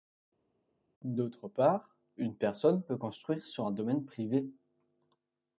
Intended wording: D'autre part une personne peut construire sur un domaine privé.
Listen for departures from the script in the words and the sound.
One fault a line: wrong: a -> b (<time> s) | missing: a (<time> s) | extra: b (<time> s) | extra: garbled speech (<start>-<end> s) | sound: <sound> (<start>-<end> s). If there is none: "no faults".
no faults